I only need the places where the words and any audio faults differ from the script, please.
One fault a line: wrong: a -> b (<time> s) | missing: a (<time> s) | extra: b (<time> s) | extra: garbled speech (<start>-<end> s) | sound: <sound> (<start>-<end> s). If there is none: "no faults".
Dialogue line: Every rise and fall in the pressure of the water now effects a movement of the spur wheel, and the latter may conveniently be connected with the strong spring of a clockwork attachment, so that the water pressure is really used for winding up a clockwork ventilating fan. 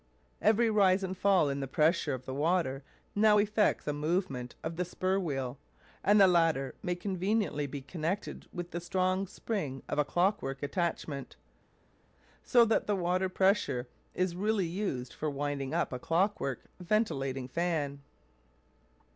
no faults